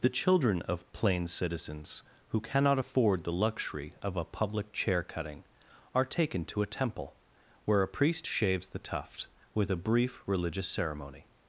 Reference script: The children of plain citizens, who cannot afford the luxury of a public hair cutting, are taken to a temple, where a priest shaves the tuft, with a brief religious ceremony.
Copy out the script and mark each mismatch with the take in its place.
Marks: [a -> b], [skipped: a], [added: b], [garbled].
The children of plain citizens, who cannot afford the luxury of a public [hair -> chair] cutting, are taken to a temple, where a priest shaves the tuft, with a brief religious ceremony.